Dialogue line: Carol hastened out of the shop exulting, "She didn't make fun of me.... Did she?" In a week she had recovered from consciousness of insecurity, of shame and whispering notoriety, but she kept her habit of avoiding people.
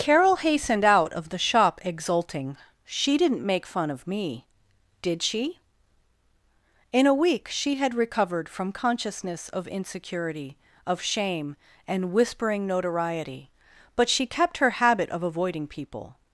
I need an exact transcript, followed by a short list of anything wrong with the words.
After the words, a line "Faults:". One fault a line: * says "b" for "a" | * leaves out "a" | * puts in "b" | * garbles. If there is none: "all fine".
Carol hastened out of the shop exulting, "She didn't make fun of me.... Did she?" In a week she had recovered from consciousness of insecurity, of shame and whispering notoriety, but she kept her habit of avoiding people.
Faults:
all fine